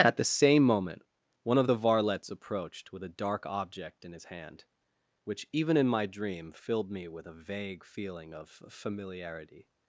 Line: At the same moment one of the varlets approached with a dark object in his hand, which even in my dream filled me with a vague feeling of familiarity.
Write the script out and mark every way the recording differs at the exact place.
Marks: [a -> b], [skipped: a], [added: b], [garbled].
At the same moment one of the varlets approached with a dark object in his hand, which even in my dream filled me with a vague feeling of familiarity.